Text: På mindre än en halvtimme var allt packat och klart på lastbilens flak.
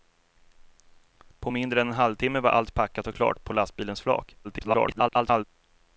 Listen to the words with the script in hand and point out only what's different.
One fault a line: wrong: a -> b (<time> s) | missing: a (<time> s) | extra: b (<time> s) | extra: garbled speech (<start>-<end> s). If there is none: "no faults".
extra: garbled speech (4.4-5.4 s)